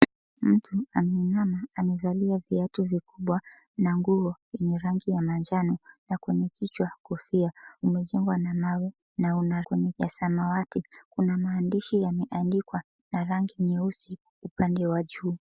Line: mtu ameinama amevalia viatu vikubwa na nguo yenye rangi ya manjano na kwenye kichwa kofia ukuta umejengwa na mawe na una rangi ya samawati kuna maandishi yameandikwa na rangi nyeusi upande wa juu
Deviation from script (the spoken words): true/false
true